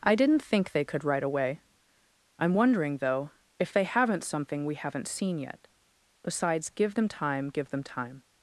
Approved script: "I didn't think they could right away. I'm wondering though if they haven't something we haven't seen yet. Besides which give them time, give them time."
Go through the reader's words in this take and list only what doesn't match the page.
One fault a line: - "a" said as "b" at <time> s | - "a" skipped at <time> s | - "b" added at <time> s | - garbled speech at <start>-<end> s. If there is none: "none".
- "which" skipped at 6.7 s